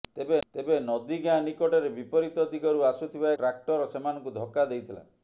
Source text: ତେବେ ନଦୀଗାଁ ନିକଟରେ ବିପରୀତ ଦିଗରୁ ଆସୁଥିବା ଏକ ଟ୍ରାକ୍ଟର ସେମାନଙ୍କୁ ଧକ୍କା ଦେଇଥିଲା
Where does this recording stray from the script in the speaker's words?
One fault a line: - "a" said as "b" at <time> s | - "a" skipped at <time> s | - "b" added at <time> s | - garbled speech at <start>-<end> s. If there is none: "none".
- "ତେବେ" added at 0.5 s
- "ଏକ" skipped at 3.4 s